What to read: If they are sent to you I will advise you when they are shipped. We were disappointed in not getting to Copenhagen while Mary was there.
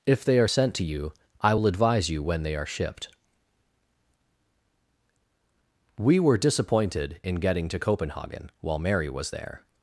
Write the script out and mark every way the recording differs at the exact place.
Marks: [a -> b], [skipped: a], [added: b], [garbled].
If they are sent to you I will advise you when they are shipped. We were disappointed in [skipped: not] getting to Copenhagen while Mary was there.